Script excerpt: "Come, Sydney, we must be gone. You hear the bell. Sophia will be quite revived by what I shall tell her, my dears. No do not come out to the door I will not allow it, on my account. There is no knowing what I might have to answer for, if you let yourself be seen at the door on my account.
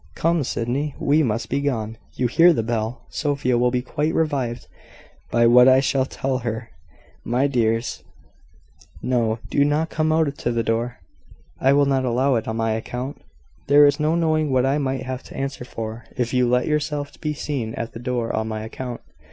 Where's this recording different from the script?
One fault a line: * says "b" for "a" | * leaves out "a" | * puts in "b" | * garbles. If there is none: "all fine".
all fine